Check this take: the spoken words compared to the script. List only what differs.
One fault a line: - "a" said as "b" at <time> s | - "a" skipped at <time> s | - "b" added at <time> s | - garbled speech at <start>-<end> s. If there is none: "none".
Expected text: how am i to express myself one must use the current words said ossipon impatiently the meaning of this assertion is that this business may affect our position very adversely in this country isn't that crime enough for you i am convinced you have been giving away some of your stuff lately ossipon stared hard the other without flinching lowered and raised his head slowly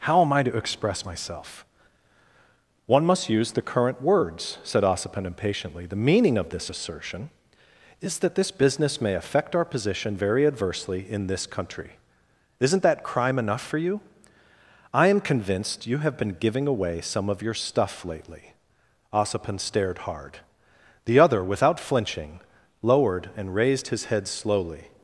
none